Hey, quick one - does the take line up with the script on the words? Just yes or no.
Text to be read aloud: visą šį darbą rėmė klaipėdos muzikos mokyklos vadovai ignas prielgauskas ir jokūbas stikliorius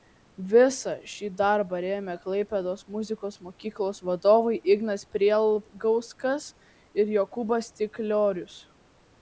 yes